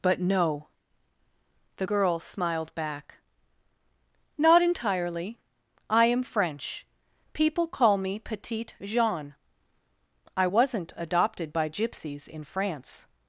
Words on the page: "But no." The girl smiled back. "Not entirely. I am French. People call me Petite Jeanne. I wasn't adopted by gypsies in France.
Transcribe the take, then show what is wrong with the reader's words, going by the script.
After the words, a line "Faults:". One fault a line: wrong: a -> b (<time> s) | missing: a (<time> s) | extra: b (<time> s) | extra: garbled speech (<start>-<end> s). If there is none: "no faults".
"But no." The girl smiled back. "Not entirely. I am French. People call me Petite Jeanne. I wasn't adopted by gypsies in France.
Faults:
no faults